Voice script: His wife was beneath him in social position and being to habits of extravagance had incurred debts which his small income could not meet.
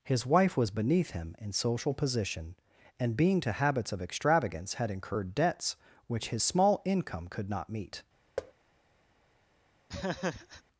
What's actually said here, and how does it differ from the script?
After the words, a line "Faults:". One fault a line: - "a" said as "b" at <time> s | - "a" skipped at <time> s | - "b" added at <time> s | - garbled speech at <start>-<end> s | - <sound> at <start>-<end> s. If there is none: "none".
His wife was beneath him in social position and being to habits of extravagance had incurred debts which his small income could not meet.
Faults:
- thud at 8.4-8.5 s
- laugh at 9.9-10.6 s